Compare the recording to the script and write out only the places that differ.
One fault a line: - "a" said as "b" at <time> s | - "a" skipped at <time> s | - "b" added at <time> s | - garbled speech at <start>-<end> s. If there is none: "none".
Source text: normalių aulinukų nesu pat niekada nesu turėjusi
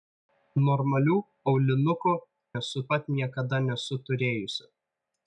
none